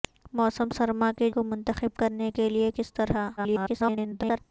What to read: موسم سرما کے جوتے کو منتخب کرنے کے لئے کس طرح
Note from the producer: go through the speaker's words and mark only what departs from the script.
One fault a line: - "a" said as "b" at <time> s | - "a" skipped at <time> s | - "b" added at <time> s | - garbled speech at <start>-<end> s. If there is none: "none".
- "جوتے" skipped at 1.3 s
- garbled speech at 3.4-4.4 s